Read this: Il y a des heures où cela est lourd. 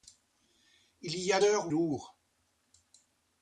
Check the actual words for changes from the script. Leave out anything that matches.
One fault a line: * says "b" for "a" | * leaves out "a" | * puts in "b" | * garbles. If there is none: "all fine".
* leaves out "des"
* leaves out "cela est"